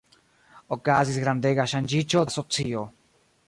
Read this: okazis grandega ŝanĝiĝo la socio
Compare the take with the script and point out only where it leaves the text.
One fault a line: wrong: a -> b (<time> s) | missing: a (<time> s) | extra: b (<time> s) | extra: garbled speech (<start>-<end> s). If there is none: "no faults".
no faults